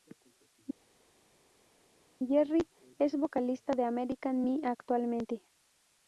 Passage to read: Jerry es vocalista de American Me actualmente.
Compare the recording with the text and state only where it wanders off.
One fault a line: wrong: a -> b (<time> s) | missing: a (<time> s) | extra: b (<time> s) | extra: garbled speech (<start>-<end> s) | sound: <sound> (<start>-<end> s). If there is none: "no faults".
no faults